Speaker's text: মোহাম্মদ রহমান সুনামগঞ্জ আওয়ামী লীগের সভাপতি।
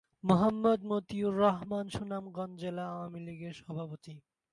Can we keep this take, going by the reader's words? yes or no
no